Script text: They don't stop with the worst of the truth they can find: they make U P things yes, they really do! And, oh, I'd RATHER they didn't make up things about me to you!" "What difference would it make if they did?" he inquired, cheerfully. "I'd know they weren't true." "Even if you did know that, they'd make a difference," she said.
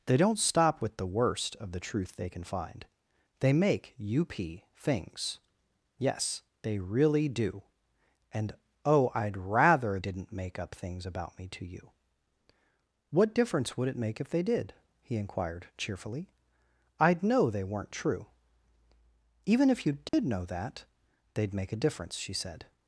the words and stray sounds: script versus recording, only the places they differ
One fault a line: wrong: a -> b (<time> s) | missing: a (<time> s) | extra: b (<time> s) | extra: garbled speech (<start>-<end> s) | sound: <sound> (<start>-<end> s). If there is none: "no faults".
missing: they (10.0 s)
sound: dropout (20.1-20.1 s)